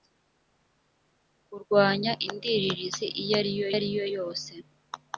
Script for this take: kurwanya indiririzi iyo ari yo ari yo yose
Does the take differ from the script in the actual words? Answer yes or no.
no